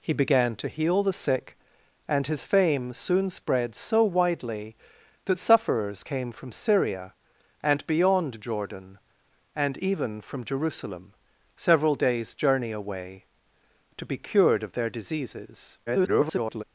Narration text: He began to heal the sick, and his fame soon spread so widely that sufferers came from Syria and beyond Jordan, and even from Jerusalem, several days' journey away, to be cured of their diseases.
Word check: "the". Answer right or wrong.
right